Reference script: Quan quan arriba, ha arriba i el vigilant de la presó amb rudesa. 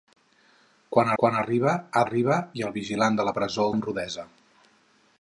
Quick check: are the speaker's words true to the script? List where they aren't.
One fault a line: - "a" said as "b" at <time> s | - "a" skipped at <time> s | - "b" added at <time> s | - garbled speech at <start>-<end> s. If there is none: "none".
none